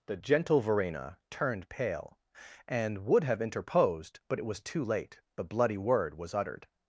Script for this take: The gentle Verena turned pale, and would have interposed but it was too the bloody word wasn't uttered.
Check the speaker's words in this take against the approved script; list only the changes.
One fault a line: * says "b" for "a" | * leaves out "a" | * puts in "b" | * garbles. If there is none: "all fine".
* puts in "late"
* says "was" for "wasn't"